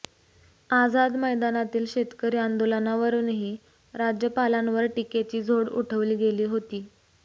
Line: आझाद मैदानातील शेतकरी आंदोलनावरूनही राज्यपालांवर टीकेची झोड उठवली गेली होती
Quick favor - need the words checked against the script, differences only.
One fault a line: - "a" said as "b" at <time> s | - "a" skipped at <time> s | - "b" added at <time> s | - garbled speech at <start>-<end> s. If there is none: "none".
none